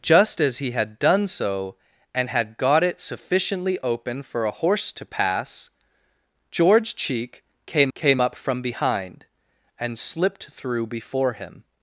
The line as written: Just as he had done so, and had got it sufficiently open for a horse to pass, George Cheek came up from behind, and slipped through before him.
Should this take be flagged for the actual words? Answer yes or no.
yes